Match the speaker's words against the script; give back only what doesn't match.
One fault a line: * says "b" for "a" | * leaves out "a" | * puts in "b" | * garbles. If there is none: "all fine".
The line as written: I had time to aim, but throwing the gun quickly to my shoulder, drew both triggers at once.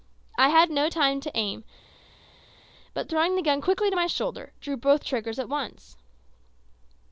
* puts in "no"